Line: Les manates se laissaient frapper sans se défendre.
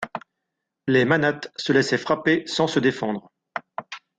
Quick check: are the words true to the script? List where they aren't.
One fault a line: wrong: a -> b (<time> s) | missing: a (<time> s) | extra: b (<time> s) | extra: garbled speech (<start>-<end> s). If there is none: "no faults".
no faults